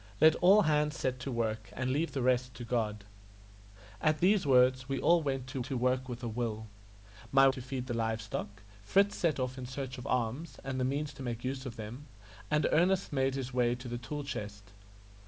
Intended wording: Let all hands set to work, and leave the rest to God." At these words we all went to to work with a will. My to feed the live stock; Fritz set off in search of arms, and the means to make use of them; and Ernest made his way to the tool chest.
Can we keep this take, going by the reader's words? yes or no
yes